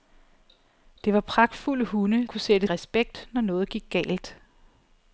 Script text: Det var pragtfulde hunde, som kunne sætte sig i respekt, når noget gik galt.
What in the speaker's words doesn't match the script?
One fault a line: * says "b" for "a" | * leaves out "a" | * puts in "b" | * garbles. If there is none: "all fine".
* leaves out "som"
* leaves out "sig"